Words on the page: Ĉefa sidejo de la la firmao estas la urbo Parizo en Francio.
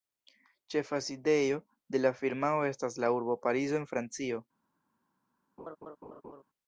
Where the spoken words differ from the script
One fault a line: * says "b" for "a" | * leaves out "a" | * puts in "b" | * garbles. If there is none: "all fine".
* leaves out "la"